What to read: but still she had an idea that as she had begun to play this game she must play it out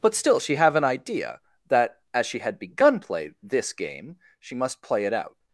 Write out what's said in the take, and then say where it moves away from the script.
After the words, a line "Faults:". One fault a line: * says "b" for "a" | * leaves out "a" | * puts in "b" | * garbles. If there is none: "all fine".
but still she have an idea that as she had begun play this game she must play it out
Faults:
* says "have" for "had"
* leaves out "to"